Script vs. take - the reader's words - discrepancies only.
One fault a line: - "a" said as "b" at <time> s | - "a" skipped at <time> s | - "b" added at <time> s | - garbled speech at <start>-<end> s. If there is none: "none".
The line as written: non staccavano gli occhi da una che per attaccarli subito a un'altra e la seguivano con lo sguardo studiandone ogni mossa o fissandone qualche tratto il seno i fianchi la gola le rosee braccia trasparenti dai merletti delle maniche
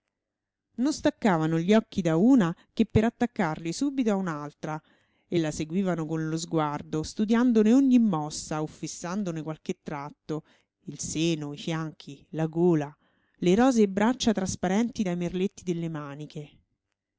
none